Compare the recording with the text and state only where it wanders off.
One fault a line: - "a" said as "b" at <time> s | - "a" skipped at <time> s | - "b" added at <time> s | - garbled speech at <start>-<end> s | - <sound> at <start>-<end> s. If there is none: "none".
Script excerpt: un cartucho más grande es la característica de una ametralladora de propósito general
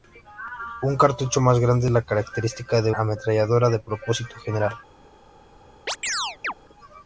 - "una" skipped at 2.9 s
- chirp at 5.9-6.5 s